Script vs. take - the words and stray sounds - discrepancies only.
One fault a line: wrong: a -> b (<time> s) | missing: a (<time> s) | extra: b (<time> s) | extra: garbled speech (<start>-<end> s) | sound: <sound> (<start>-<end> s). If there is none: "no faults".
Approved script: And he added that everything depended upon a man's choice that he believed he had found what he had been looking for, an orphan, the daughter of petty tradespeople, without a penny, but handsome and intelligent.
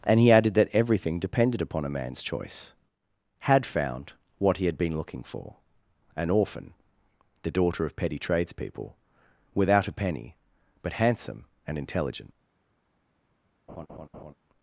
missing: that he believed he (2.7 s)
sound: laugh (13.7-14.3 s)